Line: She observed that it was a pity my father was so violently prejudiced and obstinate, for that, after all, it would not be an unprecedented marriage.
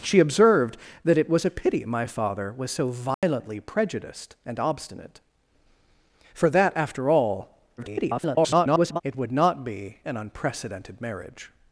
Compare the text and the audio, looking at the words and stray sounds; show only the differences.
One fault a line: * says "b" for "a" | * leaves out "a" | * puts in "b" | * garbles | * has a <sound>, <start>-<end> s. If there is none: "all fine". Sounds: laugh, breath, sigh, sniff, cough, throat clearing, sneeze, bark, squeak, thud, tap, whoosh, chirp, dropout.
* has a dropout, 3.1-3.2 s
* garbles